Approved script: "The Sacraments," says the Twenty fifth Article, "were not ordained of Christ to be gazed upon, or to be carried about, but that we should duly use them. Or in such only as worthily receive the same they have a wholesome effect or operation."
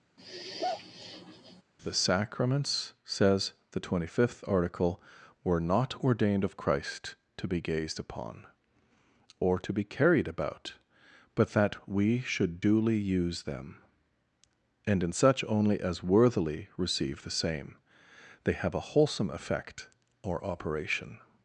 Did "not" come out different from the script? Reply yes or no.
no